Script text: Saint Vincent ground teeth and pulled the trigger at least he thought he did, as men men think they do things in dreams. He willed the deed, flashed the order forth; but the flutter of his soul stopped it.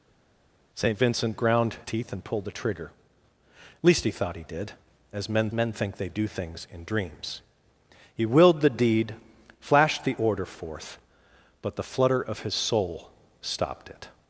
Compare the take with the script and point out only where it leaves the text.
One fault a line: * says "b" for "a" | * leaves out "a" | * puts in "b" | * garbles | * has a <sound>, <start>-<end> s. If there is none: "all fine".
all fine